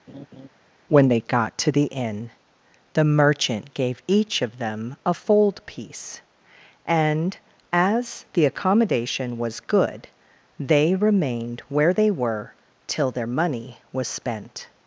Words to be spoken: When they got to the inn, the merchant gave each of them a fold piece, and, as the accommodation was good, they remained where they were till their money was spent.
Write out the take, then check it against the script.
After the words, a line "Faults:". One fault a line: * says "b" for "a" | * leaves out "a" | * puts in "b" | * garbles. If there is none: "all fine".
When they got to the inn, the merchant gave each of them a fold piece, and, as the accommodation was good, they remained where they were till their money was spent.
Faults:
all fine